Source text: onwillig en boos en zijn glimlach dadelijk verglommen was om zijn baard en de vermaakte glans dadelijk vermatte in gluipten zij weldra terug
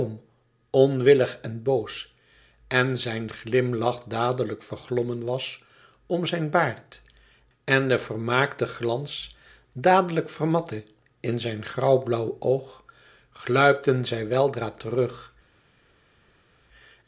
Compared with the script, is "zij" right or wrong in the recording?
right